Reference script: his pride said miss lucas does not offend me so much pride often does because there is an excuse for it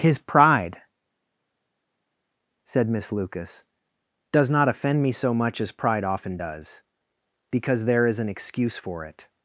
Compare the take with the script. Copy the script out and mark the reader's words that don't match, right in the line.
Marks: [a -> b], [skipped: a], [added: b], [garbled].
his pride said miss lucas does not offend me so much [added: as] pride often does because there is an excuse for it